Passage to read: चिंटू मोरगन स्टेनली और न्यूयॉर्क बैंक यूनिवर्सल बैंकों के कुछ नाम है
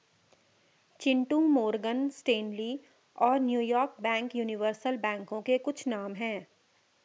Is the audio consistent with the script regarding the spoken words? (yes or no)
yes